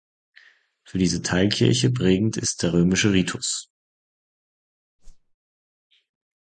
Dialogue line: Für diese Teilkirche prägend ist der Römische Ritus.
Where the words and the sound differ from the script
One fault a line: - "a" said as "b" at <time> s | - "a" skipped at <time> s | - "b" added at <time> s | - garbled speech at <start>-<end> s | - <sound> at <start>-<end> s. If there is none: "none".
- whoosh at 5.0-5.3 s